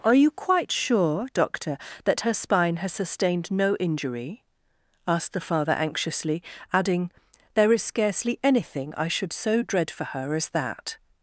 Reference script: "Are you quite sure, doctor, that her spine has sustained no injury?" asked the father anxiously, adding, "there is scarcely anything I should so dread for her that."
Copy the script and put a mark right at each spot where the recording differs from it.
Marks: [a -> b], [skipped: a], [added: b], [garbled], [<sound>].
"Are you quite sure, doctor, that her spine has sustained no injury?" asked the father anxiously, adding, "there is scarcely anything I should so dread for her [added: as] that."